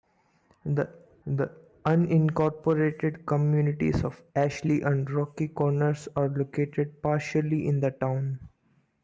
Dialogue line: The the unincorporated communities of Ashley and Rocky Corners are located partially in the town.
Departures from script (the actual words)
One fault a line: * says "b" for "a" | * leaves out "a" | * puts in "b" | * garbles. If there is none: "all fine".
all fine